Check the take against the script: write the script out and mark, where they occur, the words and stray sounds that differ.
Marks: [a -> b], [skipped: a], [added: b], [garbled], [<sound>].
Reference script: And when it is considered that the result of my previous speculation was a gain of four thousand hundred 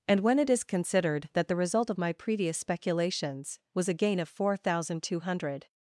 And when it is considered that the result of my previous [speculation -> speculations] was a gain of four thousand [added: two] hundred